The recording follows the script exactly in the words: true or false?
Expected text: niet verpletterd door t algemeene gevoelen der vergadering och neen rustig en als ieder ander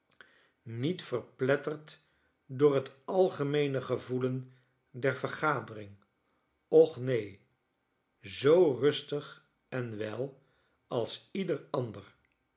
false